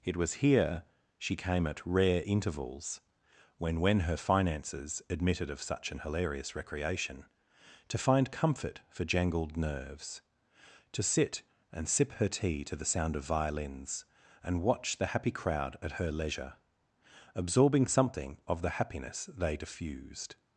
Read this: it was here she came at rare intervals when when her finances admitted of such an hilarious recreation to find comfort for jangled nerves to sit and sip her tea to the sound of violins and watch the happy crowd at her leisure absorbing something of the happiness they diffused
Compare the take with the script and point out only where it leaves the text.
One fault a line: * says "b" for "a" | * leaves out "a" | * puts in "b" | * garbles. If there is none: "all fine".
all fine